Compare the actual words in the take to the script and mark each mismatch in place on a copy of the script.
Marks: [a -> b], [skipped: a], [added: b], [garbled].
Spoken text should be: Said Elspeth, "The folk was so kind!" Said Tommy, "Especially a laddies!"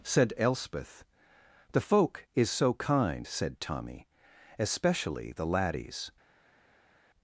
Said Elspeth, "The folk [was -> is] so kind!" Said Tommy, "Especially [a -> the] laddies!"